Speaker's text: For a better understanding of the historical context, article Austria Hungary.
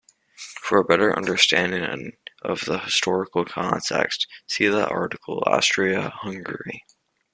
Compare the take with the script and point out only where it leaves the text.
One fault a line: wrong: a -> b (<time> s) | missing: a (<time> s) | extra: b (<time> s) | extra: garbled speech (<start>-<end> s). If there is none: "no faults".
extra: see the (4.5 s)